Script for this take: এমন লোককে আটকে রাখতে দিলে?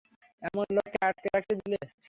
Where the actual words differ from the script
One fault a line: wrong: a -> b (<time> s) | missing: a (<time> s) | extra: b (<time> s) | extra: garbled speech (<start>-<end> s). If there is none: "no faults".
no faults